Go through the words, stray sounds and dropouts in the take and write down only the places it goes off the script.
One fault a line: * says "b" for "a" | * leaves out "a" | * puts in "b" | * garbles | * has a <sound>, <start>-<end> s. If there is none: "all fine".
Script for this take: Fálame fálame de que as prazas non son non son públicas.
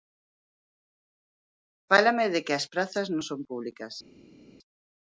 * leaves out "fálame"
* leaves out "non son"